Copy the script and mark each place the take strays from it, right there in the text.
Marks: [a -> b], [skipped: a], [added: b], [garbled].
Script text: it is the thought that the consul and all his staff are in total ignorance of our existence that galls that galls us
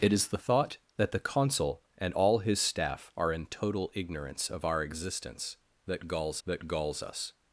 it is the thought that the consul and all his staff are in total ignorance of our existence that galls that galls us